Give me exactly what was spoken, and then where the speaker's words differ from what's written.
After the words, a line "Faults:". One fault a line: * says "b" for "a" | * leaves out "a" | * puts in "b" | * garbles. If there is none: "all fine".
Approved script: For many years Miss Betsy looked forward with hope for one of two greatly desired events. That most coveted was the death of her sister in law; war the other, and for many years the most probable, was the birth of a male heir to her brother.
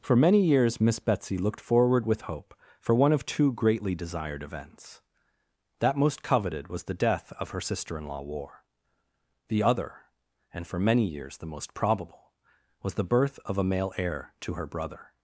For many years Miss Betsy looked forward with hope for one of two greatly desired events. That most coveted was the death of her sister in law; war the other, and for many years the most probable, was the birth of a male heir to her brother.
Faults:
all fine